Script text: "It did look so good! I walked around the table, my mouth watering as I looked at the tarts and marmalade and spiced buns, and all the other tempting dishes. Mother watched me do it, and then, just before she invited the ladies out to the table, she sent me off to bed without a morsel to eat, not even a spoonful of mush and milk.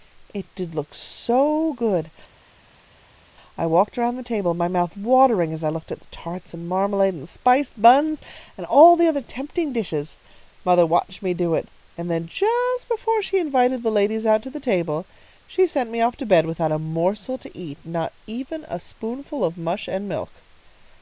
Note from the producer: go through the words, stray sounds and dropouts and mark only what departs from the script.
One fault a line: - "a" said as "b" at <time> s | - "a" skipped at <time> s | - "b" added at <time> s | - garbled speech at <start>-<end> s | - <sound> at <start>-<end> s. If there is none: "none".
none